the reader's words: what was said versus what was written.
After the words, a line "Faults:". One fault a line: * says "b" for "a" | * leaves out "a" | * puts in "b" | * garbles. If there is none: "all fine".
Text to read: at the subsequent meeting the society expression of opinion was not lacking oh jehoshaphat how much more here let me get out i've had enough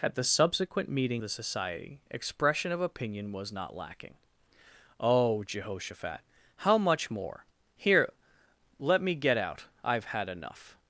at the subsequent meeting the society expression of opinion was not lacking oh jehoshaphat how much more here let me get out i've had enough
Faults:
all fine